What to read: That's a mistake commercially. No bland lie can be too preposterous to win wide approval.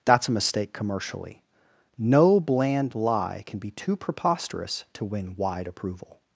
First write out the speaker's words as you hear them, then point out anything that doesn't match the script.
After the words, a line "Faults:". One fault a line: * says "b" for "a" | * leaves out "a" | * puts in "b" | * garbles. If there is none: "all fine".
That's a mistake commercially. No bland lie can be too preposterous to win wide approval.
Faults:
all fine